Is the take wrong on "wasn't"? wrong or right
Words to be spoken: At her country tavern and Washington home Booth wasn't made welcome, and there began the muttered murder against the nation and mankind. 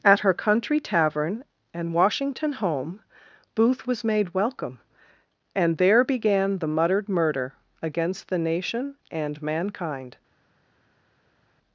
wrong